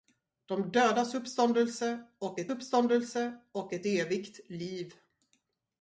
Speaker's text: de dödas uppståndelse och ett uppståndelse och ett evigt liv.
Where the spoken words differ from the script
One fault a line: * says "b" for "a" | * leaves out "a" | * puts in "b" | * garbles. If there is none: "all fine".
all fine